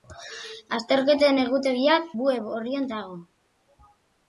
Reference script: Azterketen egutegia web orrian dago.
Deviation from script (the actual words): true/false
false